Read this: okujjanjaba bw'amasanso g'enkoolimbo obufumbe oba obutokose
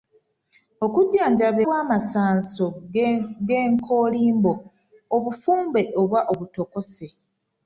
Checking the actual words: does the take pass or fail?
pass